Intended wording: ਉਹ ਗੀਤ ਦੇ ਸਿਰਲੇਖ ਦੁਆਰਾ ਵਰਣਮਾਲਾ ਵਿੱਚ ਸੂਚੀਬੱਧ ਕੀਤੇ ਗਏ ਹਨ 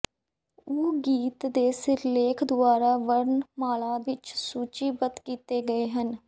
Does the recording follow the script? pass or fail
pass